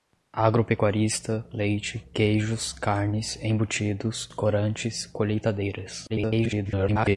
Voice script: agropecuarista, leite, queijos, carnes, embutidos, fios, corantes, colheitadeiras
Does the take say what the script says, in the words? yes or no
no